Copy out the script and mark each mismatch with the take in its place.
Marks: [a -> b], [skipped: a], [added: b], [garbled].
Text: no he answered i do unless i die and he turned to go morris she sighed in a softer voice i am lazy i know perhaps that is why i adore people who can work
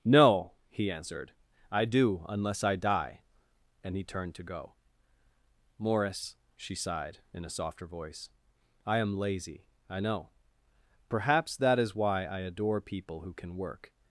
no he answered i do unless i die and he turned to go morris she sighed in a softer voice i am lazy i know perhaps that is why i adore people who can work